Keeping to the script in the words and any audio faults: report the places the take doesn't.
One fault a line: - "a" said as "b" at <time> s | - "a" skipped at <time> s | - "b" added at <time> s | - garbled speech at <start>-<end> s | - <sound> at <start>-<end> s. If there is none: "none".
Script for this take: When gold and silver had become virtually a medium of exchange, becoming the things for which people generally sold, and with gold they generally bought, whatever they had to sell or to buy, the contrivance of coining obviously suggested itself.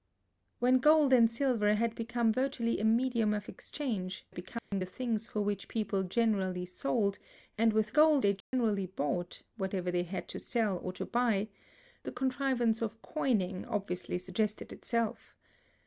- dropout at 4.6-4.7 s
- dropout at 8.4-8.5 s